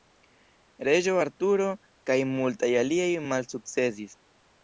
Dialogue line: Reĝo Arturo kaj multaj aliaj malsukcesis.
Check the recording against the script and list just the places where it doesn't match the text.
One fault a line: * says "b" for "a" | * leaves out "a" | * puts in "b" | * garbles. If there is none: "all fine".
all fine